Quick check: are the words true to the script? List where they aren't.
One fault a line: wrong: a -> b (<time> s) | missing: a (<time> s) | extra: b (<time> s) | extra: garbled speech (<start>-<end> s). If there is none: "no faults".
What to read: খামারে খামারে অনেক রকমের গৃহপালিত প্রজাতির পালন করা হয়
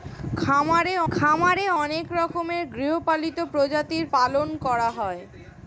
no faults